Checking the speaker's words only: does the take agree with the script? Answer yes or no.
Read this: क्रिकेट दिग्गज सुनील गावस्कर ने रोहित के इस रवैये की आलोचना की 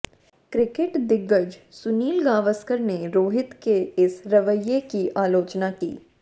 yes